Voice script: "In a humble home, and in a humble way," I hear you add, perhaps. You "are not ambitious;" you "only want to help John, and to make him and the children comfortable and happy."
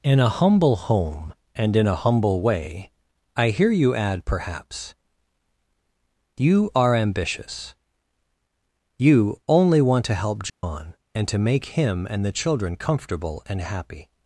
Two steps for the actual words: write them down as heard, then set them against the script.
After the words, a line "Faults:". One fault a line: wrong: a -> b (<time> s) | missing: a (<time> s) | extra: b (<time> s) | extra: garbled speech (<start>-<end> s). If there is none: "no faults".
"In a humble home, and in a humble way," I hear you add, perhaps. You "are ambitious;" you "only want to help John, and to make him and the children comfortable and happy."
Faults:
missing: not (6.9 s)